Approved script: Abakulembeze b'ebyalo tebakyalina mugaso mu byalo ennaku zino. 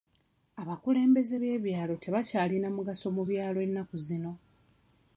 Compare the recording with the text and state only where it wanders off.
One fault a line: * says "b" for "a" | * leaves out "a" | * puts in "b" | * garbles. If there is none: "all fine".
all fine